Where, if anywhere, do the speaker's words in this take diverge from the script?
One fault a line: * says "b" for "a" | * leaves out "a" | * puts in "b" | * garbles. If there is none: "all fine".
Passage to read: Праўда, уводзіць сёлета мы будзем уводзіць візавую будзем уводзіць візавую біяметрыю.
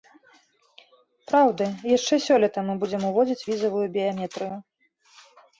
* says "яшчэ" for "уводзіць"
* leaves out "будзем уводзіць візавую"